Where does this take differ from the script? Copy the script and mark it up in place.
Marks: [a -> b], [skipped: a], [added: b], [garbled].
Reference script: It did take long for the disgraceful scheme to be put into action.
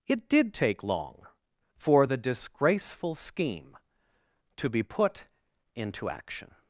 It did take long for the disgraceful scheme to be put into action.